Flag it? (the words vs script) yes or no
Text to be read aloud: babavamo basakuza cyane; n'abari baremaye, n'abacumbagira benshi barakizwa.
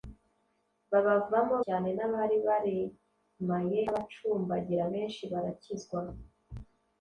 yes